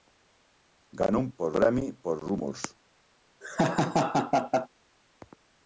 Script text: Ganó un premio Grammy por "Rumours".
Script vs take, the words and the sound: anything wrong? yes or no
yes